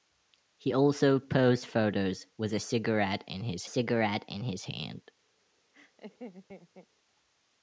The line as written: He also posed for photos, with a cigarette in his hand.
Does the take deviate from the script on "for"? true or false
true